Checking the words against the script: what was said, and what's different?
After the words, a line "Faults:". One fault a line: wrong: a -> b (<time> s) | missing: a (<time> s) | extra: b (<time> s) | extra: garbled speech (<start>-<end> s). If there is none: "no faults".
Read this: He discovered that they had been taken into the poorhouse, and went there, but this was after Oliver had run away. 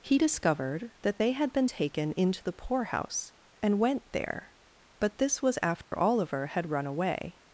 He discovered that they had been taken into the poorhouse, and went there, but this was after Oliver had run away.
Faults:
no faults